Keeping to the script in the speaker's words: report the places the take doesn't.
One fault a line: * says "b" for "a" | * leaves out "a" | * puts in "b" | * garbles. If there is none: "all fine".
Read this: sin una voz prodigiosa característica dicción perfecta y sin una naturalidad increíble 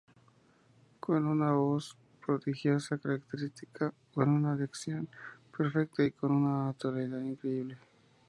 * says "con" for "sin"
* puts in "con una"
* says "con" for "sin"